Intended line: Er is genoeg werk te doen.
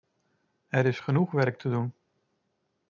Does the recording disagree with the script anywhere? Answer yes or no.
no